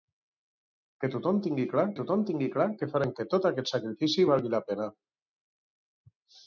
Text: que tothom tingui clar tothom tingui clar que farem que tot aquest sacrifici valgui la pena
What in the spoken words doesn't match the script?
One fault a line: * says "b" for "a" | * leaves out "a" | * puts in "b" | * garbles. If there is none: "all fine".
all fine